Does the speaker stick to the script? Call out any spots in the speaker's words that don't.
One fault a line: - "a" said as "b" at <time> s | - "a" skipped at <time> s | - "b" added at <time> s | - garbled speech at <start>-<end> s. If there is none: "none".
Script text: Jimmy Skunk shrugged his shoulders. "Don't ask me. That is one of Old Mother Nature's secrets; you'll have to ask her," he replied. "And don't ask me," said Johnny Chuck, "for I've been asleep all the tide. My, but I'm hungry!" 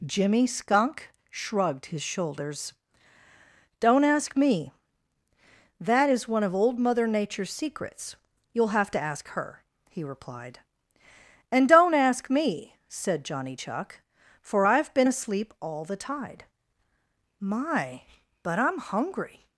none